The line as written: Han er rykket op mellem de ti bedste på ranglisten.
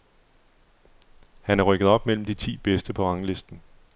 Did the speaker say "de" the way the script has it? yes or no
yes